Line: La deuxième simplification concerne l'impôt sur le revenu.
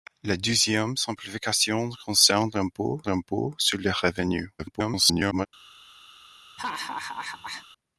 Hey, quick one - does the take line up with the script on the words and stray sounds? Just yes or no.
no